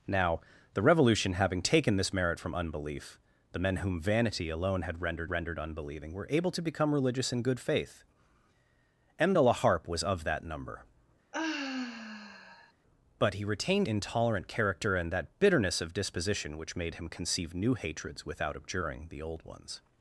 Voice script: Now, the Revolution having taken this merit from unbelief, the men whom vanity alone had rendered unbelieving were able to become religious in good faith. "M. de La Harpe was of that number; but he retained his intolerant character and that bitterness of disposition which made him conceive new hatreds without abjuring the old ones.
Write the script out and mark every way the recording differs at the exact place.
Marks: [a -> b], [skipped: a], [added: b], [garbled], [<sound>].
Now, the Revolution having taken this merit from unbelief, the men whom vanity alone had rendered [added: rendered] unbelieving were able to become religious in good faith. "M. de La Harpe was of that number; [sigh] but he retained [skipped: his] intolerant character and that bitterness of disposition which made him conceive new hatreds without abjuring the old ones.